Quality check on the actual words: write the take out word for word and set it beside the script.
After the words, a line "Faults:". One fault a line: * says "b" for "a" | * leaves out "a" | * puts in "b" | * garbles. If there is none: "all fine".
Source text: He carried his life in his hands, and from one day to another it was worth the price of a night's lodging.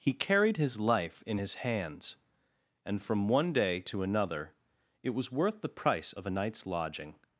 He carried his life in his hands, and from one day to another it was worth the price of a night's lodging.
Faults:
all fine